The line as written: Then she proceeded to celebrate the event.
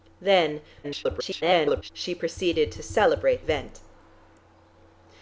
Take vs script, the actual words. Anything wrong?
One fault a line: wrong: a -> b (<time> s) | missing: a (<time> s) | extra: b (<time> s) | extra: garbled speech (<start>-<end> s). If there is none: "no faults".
extra: garbled speech (0.8-1.9 s)
missing: the (3.5 s)